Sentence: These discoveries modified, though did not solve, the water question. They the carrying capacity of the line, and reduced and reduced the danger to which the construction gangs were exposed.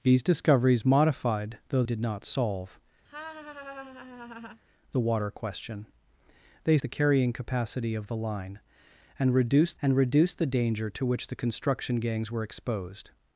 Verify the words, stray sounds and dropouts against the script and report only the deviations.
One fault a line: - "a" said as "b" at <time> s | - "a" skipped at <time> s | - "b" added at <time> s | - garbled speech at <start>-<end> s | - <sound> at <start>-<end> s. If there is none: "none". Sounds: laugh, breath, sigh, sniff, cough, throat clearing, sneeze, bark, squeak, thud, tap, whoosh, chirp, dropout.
- laugh at 3.1-4.6 s